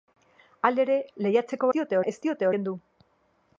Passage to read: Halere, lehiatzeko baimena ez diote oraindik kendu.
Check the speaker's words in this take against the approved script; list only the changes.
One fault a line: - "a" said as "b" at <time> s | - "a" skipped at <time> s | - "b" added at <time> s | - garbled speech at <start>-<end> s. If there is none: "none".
- "baimena" said as "diote" at 1.8 s
- "oraindik" skipped at 2.5 s